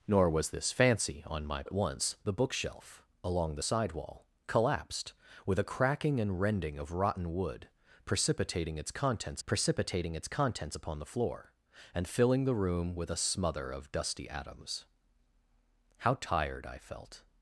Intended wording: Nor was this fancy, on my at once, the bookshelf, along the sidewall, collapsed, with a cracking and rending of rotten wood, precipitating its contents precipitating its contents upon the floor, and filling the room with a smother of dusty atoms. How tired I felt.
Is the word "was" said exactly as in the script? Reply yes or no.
yes